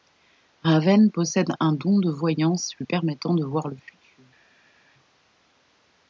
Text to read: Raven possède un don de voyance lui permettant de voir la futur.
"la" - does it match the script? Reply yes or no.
no